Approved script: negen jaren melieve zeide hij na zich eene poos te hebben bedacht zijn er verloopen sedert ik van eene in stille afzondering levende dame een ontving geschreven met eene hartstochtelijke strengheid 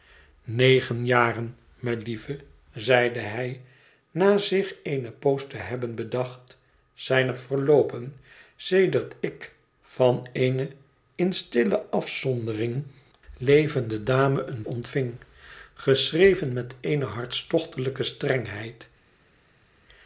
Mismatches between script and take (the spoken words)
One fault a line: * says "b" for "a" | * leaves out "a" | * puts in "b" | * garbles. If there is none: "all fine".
all fine